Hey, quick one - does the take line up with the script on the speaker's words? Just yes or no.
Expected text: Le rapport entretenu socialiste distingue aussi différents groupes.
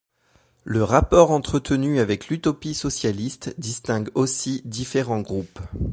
no